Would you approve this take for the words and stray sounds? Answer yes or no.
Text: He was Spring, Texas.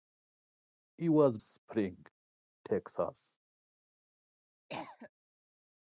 no